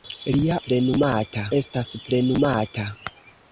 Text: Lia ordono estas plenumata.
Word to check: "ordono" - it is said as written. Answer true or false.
false